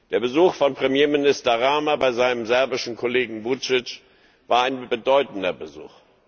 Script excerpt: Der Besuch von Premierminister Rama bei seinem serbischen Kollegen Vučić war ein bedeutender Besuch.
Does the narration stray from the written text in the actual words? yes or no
no